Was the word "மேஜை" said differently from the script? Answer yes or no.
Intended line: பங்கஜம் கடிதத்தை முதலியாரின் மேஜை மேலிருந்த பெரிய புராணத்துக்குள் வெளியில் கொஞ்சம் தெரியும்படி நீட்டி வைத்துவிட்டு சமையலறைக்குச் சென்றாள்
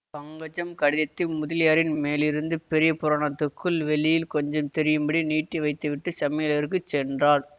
yes